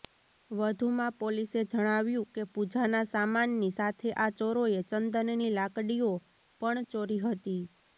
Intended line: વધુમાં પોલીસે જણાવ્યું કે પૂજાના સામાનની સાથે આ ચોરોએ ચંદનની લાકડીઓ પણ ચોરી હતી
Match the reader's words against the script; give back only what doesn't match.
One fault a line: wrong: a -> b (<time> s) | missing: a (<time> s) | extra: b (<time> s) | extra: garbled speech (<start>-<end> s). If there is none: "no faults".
no faults